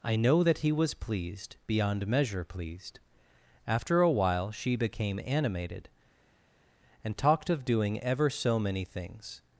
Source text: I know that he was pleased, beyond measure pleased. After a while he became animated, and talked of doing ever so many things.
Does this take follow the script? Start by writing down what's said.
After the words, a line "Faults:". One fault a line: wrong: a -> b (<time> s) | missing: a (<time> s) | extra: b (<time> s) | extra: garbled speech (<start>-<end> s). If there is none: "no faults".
I know that he was pleased, beyond measure pleased. After a while she became animated, and talked of doing ever so many things.
Faults:
wrong: he -> she (4.5 s)